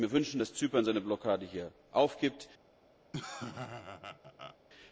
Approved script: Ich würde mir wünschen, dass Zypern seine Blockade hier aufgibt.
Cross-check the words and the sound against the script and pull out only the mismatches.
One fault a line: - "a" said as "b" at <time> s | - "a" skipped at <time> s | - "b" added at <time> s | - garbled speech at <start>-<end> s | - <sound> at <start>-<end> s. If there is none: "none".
- laugh at 3.1-4.6 s